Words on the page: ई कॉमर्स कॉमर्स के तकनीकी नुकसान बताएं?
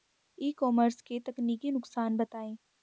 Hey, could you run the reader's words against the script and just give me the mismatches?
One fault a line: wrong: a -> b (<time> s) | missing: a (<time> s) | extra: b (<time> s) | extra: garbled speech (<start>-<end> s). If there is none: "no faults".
missing: कॉमर्स (1.0 s)